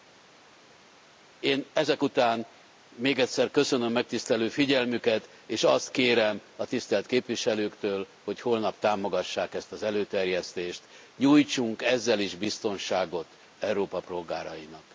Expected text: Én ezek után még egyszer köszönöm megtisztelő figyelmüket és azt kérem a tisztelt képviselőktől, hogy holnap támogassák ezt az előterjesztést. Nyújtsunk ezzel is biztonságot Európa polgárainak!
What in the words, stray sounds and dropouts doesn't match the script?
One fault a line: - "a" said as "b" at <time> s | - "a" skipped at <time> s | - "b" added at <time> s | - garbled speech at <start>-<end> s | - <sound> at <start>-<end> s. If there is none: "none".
none